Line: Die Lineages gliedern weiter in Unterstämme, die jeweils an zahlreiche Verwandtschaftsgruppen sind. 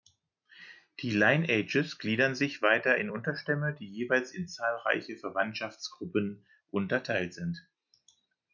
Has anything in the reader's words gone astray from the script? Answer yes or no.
yes